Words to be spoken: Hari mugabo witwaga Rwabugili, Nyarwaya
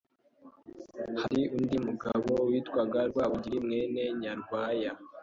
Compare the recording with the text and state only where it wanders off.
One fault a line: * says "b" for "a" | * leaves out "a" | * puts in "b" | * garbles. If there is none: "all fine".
* puts in "undi"
* puts in "mwene"